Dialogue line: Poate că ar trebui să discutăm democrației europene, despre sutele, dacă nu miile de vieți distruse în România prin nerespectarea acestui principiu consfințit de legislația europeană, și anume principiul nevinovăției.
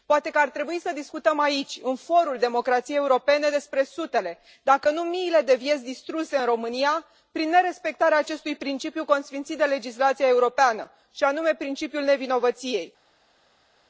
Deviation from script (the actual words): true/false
true